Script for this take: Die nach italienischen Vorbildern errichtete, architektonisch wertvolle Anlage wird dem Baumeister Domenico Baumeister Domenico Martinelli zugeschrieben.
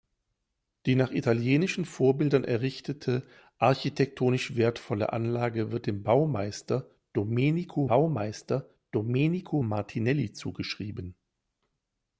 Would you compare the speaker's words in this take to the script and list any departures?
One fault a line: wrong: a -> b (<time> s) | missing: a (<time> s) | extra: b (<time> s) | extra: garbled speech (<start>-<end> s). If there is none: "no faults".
no faults